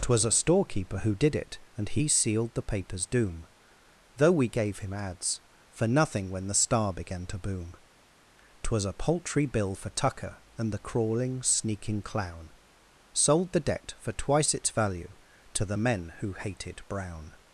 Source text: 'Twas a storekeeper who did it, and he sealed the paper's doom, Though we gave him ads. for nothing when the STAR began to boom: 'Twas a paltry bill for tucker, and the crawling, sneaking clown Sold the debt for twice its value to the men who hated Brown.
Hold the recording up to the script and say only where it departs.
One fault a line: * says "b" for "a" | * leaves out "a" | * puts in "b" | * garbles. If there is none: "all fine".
all fine